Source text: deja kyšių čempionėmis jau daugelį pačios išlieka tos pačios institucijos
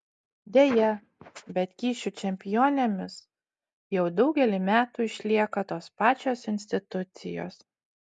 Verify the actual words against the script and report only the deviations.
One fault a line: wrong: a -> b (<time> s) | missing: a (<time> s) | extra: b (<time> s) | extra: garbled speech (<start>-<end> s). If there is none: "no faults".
extra: bet (1.5 s)
wrong: pačios -> metų (4.7 s)